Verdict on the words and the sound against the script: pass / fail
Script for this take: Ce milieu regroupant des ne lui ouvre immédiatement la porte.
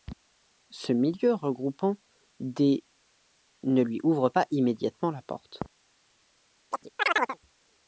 fail